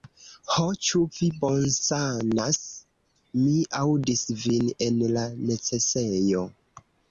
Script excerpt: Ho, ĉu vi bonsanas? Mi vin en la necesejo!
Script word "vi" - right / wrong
right